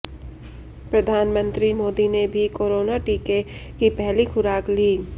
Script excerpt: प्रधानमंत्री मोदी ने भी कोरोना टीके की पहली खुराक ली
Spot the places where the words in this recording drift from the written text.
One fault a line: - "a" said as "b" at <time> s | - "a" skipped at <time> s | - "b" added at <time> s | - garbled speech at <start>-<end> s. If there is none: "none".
none